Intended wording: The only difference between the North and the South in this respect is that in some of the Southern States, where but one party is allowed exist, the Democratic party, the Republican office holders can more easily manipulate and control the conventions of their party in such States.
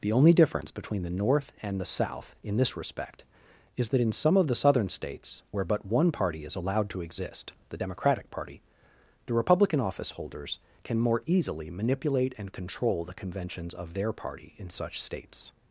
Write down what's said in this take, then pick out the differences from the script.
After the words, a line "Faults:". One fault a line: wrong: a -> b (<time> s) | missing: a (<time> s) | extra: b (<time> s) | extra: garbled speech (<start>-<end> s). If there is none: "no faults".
The only difference between the North and the South in this respect is that in some of the Southern States, where but one party is allowed to exist, the Democratic party, the Republican office holders can more easily manipulate and control the conventions of their party in such States.
Faults:
extra: to (6.9 s)